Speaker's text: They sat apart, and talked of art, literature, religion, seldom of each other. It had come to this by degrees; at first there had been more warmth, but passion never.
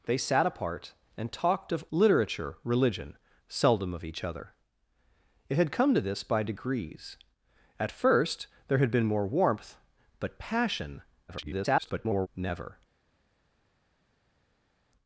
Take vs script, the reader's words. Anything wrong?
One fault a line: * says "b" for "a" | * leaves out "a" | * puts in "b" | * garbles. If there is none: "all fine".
* leaves out "art"
* garbles